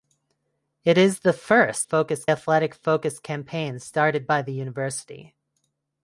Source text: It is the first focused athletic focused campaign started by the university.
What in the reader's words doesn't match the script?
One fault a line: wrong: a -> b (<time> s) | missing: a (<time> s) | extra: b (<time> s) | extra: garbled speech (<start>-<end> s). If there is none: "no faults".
no faults